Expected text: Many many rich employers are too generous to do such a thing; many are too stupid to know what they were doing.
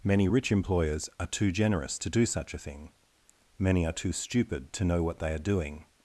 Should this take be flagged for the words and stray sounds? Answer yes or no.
yes